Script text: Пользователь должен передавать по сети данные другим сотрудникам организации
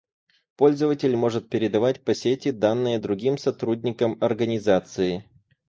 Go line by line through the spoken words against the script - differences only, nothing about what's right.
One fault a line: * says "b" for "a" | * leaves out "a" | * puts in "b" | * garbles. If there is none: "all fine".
* says "может" for "должен"